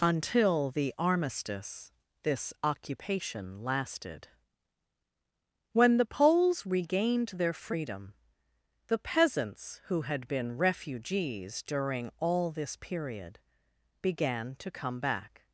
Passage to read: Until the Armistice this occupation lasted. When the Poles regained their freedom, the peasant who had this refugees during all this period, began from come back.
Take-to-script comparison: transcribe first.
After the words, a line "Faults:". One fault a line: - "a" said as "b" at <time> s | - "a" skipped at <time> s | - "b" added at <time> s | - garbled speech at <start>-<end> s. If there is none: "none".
Until the Armistice this occupation lasted. When the Poles regained their freedom, the peasants who had been refugees during all this period, began to come back.
Faults:
- "peasant" said as "peasants" at 9.0 s
- "this" said as "been" at 10.3 s
- "from" said as "to" at 14.6 s